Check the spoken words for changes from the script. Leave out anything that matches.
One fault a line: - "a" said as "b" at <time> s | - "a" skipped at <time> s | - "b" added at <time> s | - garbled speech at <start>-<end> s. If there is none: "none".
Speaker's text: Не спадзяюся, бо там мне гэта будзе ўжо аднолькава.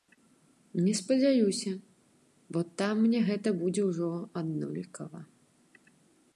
none